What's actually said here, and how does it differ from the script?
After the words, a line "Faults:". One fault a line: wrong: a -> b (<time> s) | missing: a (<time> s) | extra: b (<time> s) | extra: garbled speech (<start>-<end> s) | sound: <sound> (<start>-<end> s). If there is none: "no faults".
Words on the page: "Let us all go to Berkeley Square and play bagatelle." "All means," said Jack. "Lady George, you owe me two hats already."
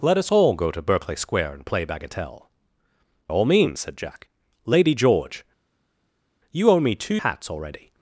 "Let us all go to Berkeley Square and play bagatelle." "All means," said Jack. "Lady George, you owe me two hats already."
Faults:
no faults